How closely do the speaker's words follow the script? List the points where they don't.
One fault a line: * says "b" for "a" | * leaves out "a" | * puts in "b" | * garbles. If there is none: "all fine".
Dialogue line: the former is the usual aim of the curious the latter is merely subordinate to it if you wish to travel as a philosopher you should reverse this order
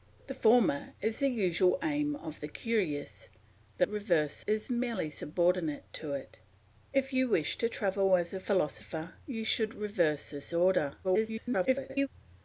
* says "reverse" for "latter"
* garbles